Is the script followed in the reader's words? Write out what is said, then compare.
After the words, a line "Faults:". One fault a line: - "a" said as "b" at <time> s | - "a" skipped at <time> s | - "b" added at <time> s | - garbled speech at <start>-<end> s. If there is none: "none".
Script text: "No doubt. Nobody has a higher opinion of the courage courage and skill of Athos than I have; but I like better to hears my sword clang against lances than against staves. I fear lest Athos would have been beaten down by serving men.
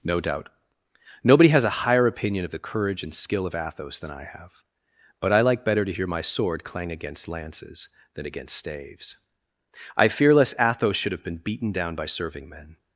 "No doubt. Nobody has a higher opinion of the courage and skill of Athos than I have; but I like better to hear my sword clang against lances than against staves. I fear lest Athos should have been beaten down by serving men.
Faults:
- "courage" skipped at 3.0 s
- "hears" said as "hear" at 5.9 s
- "would" said as "should" at 11.0 s